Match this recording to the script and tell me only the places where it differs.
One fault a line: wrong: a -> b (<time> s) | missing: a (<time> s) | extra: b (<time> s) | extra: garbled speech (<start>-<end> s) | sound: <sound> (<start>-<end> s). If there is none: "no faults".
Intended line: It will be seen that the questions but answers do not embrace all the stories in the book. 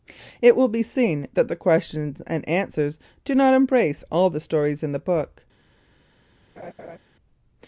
wrong: but -> and (2.2 s)
sound: laugh (6.6-7.0 s)